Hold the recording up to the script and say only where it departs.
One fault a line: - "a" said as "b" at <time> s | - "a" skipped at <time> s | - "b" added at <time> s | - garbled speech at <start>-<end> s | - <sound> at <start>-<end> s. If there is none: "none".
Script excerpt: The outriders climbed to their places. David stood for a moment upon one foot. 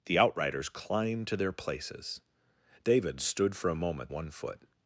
- "upon" skipped at 4.1 s